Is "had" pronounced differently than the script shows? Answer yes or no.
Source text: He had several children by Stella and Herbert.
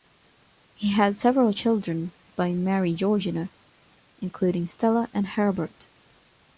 no